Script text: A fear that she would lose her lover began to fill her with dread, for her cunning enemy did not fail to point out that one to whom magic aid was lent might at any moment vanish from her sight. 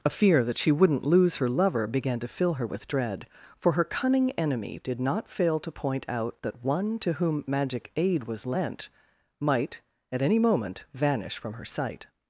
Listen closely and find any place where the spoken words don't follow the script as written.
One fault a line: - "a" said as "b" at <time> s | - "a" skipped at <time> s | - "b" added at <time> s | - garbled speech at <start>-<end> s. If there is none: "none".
- "would" said as "wouldn't" at 0.7 s